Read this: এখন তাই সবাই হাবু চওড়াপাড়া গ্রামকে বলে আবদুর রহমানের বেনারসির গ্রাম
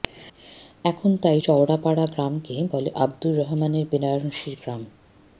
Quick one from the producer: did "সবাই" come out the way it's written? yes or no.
no